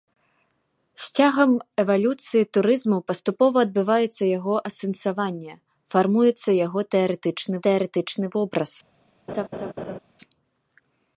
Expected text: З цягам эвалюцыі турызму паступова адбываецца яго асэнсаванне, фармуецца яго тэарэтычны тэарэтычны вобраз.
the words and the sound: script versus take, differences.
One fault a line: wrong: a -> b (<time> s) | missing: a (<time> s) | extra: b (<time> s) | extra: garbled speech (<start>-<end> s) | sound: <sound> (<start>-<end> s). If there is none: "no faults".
sound: laugh (9.3-10.0 s)